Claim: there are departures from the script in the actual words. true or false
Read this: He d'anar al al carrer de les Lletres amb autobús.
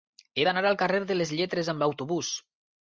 true